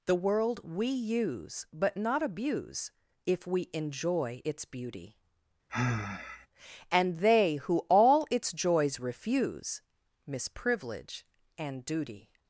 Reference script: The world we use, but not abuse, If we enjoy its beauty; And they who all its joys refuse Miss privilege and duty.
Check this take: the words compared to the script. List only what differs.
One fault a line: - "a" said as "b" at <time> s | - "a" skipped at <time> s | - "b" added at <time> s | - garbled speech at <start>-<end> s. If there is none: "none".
none